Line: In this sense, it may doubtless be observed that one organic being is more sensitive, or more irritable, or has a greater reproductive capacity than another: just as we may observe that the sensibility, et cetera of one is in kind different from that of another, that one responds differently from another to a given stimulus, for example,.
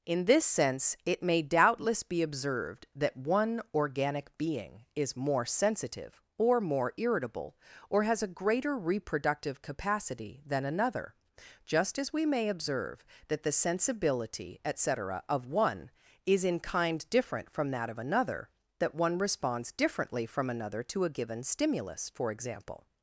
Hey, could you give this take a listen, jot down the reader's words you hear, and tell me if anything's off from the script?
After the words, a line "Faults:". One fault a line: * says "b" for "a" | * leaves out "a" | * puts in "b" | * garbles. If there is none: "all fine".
In this sense, it may doubtless be observed that one organic being is more sensitive, or more irritable, or has a greater reproductive capacity than another: just as we may observe that the sensibility, et cetera of one is in kind different from that of another, that one responds differently from another to a given stimulus, for example,.
Faults:
all fine